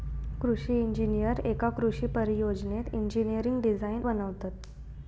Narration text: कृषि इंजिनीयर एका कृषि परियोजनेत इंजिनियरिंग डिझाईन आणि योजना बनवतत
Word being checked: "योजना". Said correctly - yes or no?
no